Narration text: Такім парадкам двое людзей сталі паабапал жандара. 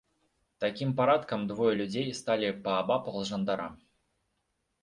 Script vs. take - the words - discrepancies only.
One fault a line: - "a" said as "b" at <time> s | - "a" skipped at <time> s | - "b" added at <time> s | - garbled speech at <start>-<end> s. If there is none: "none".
none